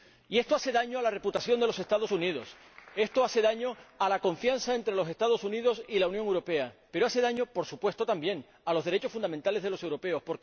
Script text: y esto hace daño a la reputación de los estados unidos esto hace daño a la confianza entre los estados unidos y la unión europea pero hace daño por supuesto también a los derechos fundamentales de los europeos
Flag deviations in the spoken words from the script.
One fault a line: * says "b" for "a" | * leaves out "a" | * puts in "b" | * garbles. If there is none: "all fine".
all fine